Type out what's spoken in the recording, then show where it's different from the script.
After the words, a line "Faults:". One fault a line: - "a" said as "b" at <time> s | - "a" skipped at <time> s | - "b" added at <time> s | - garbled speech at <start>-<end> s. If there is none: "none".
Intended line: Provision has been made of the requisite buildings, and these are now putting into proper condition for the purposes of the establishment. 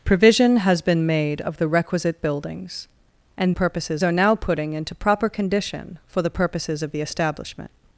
Provision has been made of the requisite buildings, and purposes are now putting into proper condition for the purposes of the establishment.
Faults:
- "these" said as "purposes" at 3.5 s